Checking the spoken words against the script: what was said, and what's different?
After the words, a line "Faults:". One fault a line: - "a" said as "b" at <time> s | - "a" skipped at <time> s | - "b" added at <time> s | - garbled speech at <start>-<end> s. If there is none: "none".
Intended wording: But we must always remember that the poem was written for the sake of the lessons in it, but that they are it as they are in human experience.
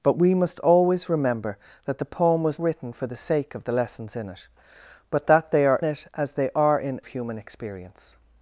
But we must always remember that the poem was written for the sake of the lessons in it, but that they are it as they are in human experience.
Faults:
none